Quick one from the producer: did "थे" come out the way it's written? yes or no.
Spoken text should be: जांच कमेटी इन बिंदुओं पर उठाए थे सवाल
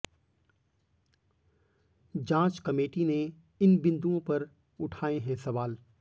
no